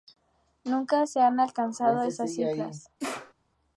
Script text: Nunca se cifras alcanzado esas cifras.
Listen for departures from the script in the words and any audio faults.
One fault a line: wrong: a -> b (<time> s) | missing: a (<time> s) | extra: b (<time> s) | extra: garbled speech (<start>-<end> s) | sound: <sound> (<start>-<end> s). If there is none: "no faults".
wrong: cifras -> han (1.2 s)
sound: sneeze (3.0-3.3 s)